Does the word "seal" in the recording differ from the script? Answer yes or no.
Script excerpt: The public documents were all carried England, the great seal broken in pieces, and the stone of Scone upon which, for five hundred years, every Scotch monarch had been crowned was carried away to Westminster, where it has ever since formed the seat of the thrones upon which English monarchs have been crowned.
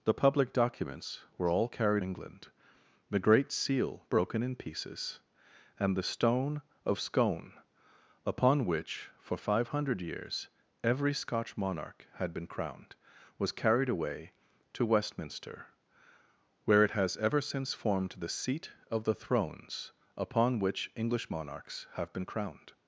no